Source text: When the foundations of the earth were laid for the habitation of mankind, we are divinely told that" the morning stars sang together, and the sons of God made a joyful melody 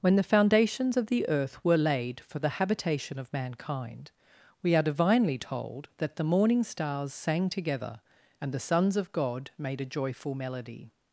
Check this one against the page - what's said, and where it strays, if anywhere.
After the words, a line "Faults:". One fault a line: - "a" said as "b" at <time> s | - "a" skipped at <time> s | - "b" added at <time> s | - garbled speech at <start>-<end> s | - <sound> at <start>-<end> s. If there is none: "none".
When the foundations of the earth were laid for the habitation of mankind, we are divinely told that" the morning stars sang together, and the sons of God made a joyful melody
Faults:
none